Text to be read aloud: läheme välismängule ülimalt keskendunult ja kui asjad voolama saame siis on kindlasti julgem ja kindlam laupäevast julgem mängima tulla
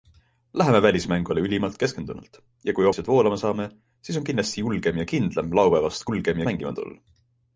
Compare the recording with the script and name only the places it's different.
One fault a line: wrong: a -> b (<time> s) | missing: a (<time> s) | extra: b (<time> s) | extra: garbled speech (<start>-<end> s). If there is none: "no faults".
no faults